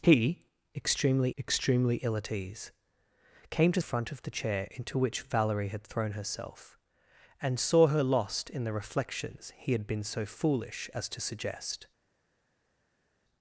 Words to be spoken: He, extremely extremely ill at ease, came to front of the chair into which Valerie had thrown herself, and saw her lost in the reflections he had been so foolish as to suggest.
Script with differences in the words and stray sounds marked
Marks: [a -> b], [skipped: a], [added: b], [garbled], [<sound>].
He, extremely extremely ill at ease, came to front of the chair into which Valerie had thrown herself, and saw her lost in the reflections he had been so foolish as to suggest.